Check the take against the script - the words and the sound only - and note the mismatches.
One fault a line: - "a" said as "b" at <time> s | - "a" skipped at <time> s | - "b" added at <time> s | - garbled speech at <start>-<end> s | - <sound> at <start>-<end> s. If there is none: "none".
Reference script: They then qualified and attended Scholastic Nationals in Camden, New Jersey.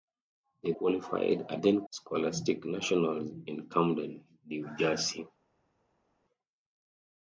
- "then" skipped at 0.7 s
- "attended" said as "then" at 1.6 s